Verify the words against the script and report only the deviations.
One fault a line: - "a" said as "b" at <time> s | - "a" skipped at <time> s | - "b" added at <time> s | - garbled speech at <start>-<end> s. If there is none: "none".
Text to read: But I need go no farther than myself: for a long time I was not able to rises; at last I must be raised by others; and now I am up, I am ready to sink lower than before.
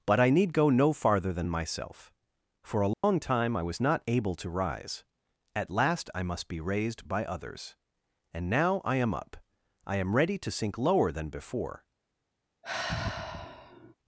- "rises" said as "rise" at 4.5 s